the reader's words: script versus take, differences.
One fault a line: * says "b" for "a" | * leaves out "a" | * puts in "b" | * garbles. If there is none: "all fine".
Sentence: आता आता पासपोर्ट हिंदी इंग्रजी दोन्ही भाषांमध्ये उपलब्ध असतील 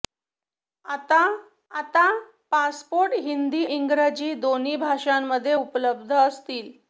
all fine